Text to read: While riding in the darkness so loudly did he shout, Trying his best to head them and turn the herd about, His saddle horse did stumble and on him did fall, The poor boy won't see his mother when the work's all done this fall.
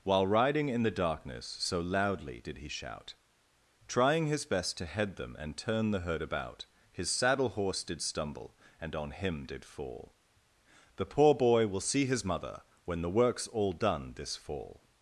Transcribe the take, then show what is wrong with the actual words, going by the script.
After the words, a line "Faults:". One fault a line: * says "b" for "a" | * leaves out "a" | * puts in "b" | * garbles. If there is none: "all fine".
While riding in the darkness so loudly did he shout, Trying his best to head them and turn the herd about, His saddle horse did stumble and on him did fall, The poor boy will see his mother when the work's all done this fall.
Faults:
* says "will" for "won't"